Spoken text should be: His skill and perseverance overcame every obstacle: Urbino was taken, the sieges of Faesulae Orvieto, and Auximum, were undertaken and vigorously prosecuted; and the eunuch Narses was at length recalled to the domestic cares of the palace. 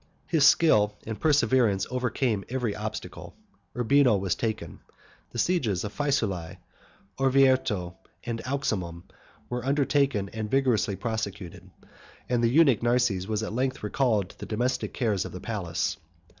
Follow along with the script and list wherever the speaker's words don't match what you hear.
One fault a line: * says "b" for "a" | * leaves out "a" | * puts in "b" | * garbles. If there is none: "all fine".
all fine